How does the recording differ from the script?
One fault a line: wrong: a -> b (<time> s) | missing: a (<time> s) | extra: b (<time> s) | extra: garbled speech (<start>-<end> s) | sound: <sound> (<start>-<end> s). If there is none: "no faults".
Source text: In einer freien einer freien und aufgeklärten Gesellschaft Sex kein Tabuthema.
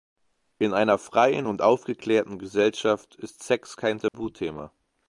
missing: einer freien (1.5 s)
extra: ist (3.2 s)
sound: dropout (4.1-4.1 s)